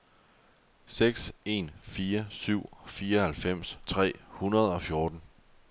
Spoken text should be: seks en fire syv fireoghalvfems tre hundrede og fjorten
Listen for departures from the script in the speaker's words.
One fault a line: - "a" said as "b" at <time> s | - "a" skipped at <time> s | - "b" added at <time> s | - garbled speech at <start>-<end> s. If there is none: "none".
none